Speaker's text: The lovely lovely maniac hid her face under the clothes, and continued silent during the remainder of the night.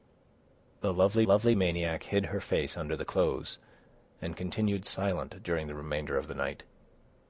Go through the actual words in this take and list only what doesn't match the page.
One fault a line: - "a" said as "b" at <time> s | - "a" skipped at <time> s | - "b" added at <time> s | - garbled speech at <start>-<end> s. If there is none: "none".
none